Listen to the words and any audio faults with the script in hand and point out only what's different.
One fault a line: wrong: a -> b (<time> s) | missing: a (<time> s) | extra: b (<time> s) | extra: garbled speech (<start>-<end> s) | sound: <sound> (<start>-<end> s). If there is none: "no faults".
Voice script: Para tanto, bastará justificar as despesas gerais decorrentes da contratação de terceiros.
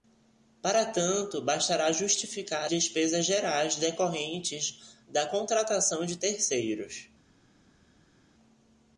missing: as (2.7 s)